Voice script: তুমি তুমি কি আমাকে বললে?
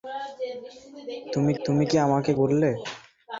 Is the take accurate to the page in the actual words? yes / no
yes